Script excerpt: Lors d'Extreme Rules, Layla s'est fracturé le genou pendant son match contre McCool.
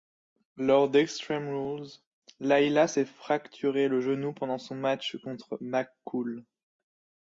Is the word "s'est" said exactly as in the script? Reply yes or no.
yes